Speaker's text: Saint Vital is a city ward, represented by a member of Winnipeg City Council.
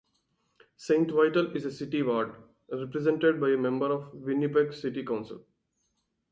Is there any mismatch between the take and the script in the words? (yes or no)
no